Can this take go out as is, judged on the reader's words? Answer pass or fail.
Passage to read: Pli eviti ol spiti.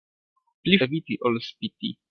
pass